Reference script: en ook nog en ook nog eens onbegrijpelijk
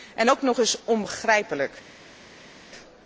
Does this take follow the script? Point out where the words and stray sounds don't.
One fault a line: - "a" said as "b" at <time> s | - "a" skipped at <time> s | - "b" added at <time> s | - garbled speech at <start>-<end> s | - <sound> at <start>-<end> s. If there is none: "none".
- "en ook nog" skipped at 0.6 s